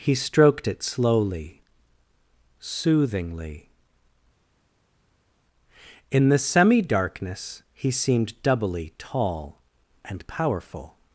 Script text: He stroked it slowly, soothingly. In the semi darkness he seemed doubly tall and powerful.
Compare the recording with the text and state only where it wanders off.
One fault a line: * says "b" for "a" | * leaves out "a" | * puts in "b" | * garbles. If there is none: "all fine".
all fine